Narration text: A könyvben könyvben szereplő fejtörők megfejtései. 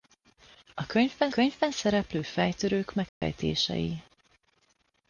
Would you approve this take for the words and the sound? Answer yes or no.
no